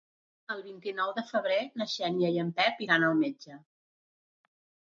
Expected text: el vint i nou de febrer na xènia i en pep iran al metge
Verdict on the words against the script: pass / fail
pass